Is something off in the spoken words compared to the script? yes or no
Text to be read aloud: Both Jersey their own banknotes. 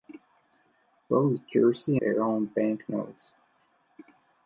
no